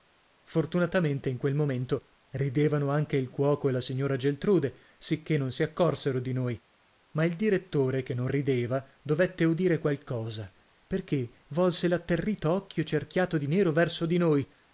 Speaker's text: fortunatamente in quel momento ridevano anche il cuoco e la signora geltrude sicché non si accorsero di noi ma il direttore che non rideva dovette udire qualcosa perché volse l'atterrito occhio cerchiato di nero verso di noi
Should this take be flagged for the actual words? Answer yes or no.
no